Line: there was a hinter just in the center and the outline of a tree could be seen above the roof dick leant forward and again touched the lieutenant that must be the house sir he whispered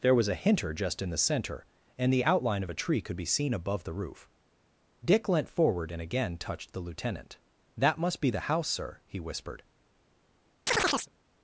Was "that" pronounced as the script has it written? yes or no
yes